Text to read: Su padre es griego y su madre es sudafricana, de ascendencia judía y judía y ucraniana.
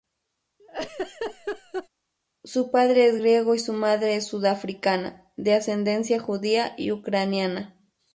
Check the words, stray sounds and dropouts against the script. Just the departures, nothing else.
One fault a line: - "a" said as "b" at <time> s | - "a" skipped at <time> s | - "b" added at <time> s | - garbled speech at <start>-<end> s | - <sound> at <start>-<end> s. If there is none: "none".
- laugh at 0.6-1.9 s
- "judía y" skipped at 6.9 s